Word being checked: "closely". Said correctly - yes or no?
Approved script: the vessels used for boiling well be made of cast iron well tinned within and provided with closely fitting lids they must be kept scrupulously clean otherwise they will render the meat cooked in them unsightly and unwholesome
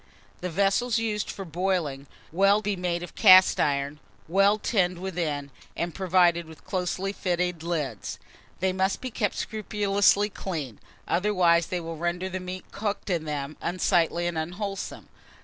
yes